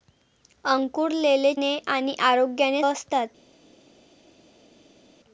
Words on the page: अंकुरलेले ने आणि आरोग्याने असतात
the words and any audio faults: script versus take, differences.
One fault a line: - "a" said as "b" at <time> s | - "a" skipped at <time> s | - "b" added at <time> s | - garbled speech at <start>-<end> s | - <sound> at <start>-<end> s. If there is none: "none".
none